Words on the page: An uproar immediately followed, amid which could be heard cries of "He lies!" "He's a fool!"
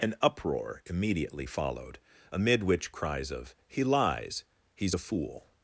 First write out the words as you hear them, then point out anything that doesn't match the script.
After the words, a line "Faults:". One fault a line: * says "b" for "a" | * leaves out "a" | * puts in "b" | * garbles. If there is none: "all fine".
An uproar immediately followed, amid which cries of "He lies!" "He's a fool!"
Faults:
* leaves out "could be heard"